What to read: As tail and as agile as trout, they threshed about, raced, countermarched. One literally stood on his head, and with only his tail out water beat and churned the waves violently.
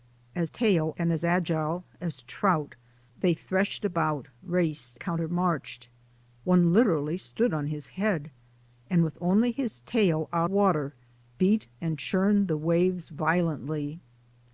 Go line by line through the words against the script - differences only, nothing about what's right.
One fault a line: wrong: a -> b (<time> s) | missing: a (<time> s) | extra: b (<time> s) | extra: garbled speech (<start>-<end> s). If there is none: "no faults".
no faults